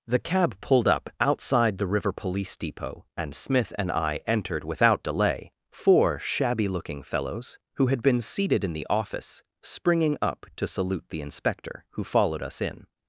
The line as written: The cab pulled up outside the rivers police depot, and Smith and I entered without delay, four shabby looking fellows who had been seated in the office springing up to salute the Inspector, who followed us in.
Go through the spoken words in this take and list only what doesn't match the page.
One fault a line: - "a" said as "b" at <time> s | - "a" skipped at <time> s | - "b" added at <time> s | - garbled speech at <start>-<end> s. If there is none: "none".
- "rivers" said as "river" at 1.9 s